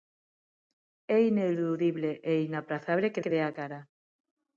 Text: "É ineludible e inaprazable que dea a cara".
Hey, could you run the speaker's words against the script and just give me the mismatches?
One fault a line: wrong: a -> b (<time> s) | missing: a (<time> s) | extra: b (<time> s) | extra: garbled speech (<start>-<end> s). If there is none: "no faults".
extra: que (3.2 s)